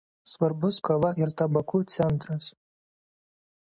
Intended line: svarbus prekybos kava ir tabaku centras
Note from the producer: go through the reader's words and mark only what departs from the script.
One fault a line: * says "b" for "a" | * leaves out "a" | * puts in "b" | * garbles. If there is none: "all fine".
* leaves out "prekybos"